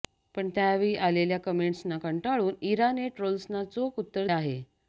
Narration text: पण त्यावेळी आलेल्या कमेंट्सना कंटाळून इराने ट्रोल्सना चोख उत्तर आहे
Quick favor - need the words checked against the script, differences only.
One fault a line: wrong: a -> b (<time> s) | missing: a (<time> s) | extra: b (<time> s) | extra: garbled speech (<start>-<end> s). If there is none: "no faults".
no faults